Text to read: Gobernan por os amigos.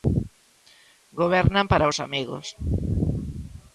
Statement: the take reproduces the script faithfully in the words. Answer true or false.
false